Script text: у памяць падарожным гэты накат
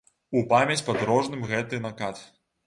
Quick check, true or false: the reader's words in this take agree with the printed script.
true